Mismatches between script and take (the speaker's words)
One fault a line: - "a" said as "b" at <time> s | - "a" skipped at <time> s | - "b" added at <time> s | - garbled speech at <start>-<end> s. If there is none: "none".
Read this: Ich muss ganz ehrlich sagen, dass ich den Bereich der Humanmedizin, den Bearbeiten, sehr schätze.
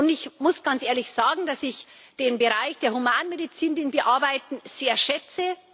none